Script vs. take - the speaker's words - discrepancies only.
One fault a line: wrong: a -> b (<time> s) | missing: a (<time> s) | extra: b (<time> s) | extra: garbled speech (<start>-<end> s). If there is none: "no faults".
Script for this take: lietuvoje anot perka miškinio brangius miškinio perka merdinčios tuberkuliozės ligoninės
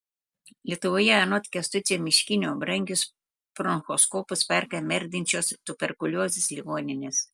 wrong: perka -> kęstučio (1.6 s)
wrong: miškinio -> bronchoskopus (3.6 s)